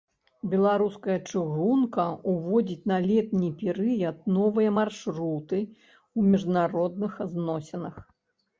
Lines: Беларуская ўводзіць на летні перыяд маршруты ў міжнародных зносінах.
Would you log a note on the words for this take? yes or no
yes